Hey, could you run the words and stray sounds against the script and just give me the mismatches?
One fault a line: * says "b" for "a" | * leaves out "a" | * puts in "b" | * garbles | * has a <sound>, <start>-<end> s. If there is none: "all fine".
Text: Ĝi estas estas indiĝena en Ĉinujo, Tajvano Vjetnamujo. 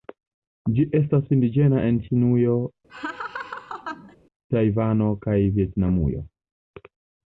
* leaves out "estas"
* has a laugh, 2.9-4.2 s
* puts in "kaj"